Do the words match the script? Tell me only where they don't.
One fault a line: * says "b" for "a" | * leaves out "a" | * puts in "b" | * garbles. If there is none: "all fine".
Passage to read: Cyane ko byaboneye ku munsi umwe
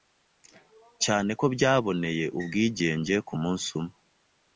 * puts in "ubwigenge"